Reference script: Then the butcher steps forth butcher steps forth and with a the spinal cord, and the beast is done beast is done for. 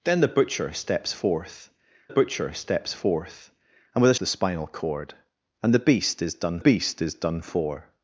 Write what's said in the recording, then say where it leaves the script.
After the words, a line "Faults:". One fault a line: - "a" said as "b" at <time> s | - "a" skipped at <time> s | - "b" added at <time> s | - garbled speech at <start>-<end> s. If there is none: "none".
Then the butcher steps forth butcher steps forth and with a the spinal cord, and the beast is done beast is done for.
Faults:
none